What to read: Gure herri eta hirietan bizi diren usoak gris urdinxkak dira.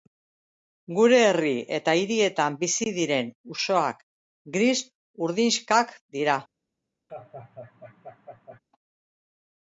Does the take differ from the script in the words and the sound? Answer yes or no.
yes